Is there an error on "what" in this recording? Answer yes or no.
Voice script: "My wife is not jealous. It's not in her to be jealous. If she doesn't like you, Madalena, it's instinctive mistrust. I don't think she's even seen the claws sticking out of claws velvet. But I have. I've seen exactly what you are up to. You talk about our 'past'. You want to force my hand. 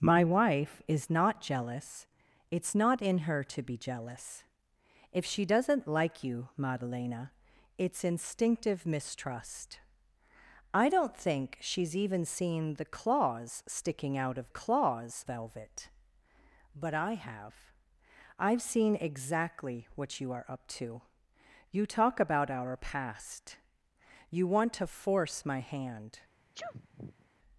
no